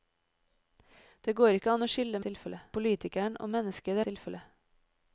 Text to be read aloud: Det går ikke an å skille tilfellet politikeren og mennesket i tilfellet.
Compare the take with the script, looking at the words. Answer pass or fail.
pass